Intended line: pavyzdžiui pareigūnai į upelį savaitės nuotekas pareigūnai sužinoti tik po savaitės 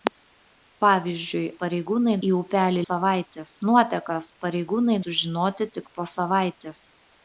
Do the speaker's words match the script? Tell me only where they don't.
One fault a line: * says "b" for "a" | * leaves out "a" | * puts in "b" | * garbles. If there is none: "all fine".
all fine